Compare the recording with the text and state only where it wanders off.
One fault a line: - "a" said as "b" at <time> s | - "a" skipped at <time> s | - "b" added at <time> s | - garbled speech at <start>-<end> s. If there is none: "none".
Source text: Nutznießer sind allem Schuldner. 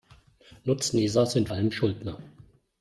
none